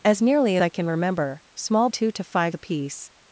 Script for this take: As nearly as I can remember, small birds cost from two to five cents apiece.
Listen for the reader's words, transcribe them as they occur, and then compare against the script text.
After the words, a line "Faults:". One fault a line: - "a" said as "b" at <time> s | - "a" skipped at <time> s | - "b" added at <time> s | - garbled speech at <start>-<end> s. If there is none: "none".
As nearly I can remember, small two to five apiece.
Faults:
- "as" skipped at 0.6 s
- "birds cost from" skipped at 1.9 s
- "cents" skipped at 2.6 s